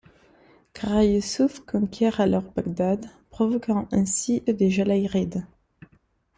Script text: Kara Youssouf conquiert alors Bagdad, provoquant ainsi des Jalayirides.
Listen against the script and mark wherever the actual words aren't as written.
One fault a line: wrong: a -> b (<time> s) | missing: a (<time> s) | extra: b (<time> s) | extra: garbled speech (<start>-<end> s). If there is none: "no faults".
no faults